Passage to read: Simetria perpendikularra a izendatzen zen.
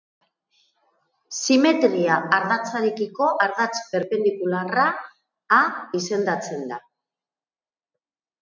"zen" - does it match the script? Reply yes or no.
no